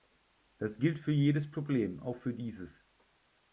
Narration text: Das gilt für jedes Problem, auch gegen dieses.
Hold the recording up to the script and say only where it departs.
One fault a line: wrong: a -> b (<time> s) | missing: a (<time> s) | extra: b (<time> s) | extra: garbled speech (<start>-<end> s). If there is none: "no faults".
wrong: gegen -> für (2.1 s)